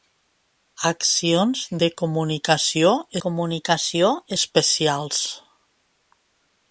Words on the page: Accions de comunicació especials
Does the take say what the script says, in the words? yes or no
no